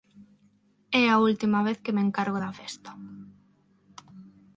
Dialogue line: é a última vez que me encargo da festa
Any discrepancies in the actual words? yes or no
no